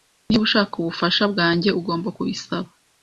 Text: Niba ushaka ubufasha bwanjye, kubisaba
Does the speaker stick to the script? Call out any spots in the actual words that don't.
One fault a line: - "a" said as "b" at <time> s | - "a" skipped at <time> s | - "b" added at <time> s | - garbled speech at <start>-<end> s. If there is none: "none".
- "ugomba" added at 1.8 s